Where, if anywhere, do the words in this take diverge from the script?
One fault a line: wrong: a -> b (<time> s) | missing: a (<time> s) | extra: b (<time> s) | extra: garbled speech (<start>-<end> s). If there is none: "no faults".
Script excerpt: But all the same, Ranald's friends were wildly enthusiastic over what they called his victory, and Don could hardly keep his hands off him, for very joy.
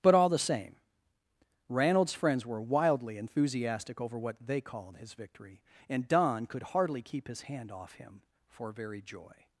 wrong: hands -> hand (7.4 s)